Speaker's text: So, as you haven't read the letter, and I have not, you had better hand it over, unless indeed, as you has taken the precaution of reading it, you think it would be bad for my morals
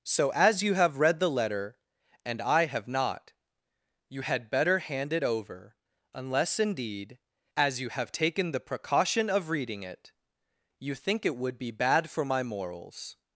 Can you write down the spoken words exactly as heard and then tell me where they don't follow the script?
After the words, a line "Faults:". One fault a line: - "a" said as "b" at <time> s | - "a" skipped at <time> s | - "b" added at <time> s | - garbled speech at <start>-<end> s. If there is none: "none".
So, as you have read the letter, and I have not, you had better hand it over, unless indeed, as you have taken the precaution of reading it, you think it would be bad for my morals
Faults:
- "haven't" said as "have" at 0.7 s
- "has" said as "have" at 7.9 s